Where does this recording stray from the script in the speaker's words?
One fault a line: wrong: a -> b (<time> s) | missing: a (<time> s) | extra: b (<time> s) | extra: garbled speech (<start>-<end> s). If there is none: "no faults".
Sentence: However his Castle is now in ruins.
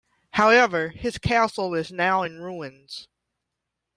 no faults